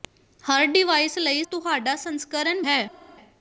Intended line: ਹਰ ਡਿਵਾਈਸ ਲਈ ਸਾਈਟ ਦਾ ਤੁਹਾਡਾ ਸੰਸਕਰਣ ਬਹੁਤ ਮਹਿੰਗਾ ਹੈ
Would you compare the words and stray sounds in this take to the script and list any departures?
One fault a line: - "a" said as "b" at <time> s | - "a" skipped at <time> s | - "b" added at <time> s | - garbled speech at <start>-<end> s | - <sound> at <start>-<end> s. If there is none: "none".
- "ਸਾਈਟ ਦਾ" skipped at 1.4 s
- "ਬਹੁਤ ਮਹਿੰਗਾ" skipped at 2.6 s